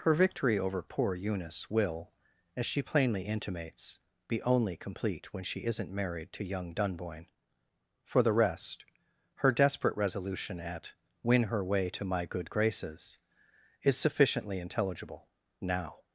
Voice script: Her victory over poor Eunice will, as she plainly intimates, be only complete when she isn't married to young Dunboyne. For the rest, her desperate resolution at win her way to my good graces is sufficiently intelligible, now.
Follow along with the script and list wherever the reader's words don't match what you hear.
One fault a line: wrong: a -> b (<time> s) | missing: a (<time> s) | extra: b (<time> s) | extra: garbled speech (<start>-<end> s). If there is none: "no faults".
no faults